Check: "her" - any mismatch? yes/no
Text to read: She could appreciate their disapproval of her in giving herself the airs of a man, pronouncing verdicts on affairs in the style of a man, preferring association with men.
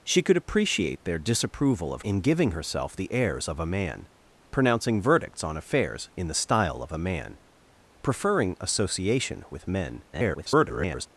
yes